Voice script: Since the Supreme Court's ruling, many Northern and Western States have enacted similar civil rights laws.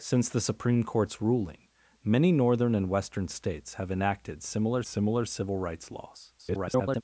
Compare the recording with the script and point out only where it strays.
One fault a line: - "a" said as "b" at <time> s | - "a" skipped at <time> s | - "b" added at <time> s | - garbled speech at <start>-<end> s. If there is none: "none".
- "similar" added at 4.8 s
- garbled speech at 6.4-7.0 s